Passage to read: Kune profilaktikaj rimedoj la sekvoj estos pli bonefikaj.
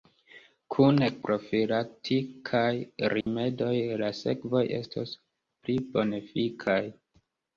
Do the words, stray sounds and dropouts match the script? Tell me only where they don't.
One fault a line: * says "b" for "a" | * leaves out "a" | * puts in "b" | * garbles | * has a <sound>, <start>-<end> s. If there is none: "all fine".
* has a dropout, 3.2-3.3 s